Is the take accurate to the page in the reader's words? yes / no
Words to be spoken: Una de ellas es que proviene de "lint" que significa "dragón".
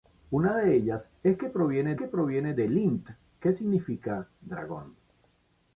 no